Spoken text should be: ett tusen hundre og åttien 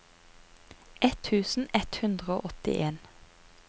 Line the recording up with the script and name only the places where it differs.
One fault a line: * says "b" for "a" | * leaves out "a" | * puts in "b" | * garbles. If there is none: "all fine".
* puts in "ett"